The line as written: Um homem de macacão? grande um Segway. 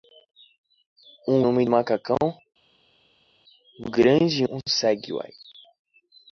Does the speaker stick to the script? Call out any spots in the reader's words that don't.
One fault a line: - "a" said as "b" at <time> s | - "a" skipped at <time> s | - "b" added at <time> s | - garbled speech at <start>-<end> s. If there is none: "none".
none